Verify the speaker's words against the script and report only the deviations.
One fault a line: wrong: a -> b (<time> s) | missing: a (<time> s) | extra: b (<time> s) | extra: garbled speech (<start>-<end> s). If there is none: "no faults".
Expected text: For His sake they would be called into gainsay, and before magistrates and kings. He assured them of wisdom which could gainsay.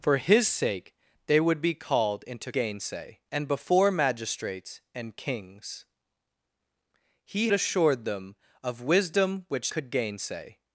no faults